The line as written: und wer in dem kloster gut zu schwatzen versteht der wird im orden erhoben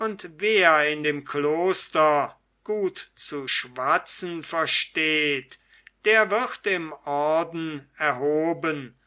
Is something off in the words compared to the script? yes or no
no